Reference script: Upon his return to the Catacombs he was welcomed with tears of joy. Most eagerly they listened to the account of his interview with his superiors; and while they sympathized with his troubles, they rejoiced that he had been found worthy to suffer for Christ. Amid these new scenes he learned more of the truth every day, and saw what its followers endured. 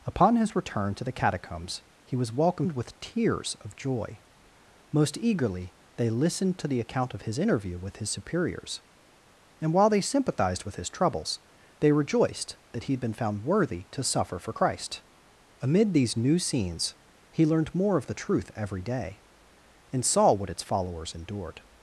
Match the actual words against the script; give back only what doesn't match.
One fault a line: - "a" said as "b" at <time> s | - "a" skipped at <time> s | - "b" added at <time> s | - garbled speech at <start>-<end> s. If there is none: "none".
none